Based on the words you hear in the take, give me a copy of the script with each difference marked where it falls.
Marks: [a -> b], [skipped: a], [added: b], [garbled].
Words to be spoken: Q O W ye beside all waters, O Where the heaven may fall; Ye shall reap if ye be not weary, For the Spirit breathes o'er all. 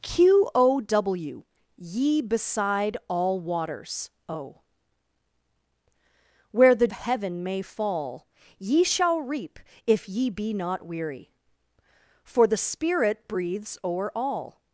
Q O W ye beside all waters, O Where the heaven may fall; Ye shall reap if ye be not weary, For the Spirit breathes o'er all.